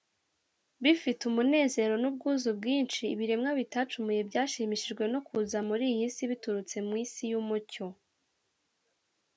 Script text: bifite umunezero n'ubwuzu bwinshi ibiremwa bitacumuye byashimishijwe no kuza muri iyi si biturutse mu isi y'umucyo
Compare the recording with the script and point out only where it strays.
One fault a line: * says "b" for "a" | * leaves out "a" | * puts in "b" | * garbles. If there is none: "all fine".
all fine